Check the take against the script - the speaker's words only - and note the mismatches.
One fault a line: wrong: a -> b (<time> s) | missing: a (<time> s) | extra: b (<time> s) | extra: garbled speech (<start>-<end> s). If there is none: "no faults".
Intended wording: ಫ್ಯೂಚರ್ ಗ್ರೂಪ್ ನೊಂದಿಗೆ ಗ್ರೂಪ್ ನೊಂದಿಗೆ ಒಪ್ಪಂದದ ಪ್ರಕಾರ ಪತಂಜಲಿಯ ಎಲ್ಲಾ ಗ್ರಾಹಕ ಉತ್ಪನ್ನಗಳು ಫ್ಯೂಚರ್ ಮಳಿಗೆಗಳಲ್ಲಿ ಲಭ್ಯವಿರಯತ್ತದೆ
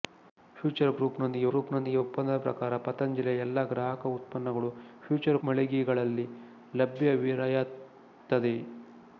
no faults